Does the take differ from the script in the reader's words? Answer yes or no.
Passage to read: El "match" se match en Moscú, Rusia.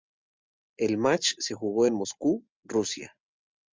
yes